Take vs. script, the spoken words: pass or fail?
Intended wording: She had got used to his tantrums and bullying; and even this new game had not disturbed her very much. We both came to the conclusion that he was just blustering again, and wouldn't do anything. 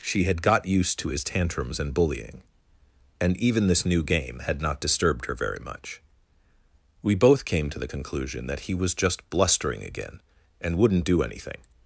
pass